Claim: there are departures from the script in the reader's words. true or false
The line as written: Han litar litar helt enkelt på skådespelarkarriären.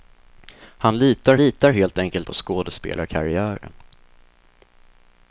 false